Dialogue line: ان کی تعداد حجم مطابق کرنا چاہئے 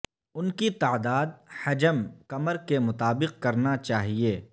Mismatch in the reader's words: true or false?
true